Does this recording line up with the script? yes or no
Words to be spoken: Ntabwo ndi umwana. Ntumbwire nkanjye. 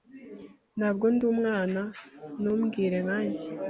yes